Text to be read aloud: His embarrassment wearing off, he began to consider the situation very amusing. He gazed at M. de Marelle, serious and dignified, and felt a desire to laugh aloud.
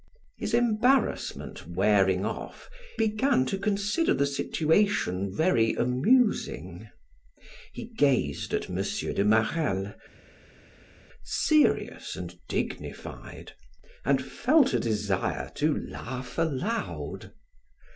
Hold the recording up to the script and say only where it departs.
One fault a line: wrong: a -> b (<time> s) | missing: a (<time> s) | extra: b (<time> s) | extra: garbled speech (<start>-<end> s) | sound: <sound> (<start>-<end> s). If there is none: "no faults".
missing: he (2.7 s)